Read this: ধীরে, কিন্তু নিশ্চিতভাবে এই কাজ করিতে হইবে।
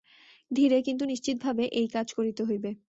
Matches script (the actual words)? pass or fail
pass